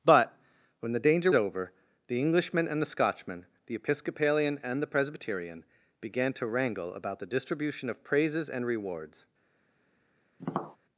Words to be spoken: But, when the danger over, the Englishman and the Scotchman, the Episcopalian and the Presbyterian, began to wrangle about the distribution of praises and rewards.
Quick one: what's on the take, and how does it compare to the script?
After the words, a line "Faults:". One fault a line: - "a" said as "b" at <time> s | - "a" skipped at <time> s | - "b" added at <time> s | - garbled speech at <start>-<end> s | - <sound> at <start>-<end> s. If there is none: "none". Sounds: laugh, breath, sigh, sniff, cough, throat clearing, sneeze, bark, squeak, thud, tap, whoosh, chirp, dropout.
But, when the danger over, the Englishman and the Scotchman, the Episcopalian and the Presbyterian, began to wrangle about the distribution of praises and rewards.
Faults:
- tap at 10.4-10.8 s